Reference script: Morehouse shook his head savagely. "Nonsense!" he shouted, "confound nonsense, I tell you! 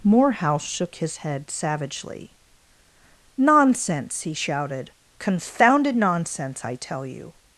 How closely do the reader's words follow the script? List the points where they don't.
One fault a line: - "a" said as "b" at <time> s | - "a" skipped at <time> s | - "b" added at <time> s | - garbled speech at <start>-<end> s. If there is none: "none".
- "confound" said as "confounded" at 5.2 s